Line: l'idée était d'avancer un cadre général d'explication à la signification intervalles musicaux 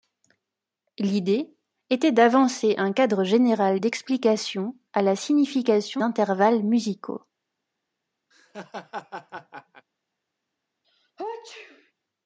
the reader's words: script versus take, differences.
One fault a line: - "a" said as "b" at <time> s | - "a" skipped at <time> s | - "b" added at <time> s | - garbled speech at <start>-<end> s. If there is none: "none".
none